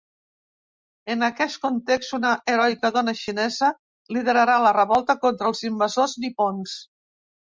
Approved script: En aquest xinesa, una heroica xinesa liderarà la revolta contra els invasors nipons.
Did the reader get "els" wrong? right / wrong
right